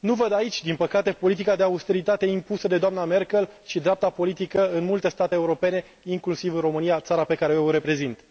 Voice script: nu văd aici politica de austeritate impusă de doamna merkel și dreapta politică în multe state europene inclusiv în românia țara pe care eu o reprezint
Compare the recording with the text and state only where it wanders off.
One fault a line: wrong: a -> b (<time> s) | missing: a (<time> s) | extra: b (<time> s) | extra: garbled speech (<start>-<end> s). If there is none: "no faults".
extra: din păcate (0.6 s)